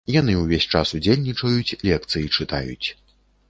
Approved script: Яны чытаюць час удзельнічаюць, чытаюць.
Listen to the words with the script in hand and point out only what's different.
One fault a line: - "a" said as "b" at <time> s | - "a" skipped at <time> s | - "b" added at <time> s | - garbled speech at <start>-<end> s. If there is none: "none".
- "чытаюць" said as "ўвесь" at 0.4 s
- "лекцыі" added at 1.9 s